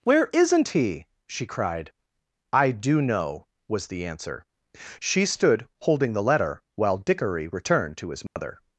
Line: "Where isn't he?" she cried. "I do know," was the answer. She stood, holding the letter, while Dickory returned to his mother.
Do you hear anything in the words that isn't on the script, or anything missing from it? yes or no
no